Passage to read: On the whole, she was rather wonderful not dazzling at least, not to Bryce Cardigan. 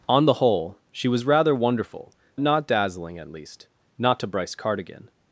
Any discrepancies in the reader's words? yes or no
no